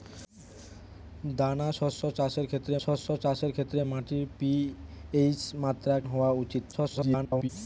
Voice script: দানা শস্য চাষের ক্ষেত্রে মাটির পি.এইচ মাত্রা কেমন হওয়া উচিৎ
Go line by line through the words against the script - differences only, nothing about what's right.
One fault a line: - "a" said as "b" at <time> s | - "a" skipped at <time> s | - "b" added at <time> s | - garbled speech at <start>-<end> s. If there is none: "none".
- "শস্য চাষের ক্ষেত্রে" added at 2.8 s
- "কেমন" skipped at 6.0 s
- garbled speech at 6.7-7.5 s